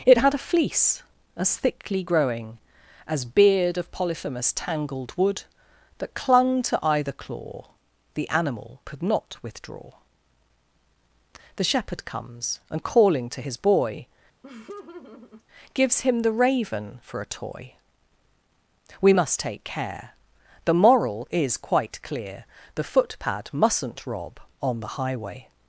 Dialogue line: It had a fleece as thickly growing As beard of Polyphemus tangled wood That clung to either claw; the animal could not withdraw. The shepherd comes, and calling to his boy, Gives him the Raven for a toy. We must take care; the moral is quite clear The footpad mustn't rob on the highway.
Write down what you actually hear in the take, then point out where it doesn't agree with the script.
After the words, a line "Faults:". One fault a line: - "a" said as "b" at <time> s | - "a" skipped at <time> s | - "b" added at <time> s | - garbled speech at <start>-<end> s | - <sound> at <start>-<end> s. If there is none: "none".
It had a fleece as thickly growing As beard of Polyphemus tangled wood That clung to either claw; the animal could not withdraw. The shepherd comes, and calling to his boy, Gives him the Raven for a toy. We must take care; the moral is quite clear The footpad mustn't rob on the highway.
Faults:
- laugh at 14.4-15.4 s